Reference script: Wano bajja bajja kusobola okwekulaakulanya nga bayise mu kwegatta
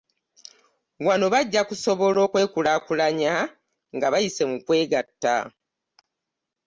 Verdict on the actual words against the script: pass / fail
fail